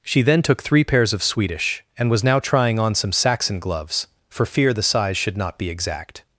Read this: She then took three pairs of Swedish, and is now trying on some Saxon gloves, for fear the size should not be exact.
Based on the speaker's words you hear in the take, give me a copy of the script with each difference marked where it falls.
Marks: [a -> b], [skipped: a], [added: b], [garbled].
She then took three pairs of Swedish, and [is -> was] now trying on some Saxon gloves, for fear the size should not be exact.